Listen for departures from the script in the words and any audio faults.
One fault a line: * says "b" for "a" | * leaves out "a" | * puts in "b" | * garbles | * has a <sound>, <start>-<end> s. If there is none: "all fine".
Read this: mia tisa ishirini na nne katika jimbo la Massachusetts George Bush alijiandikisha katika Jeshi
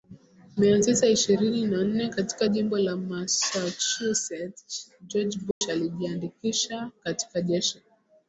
* has a dropout, 5.5-5.6 s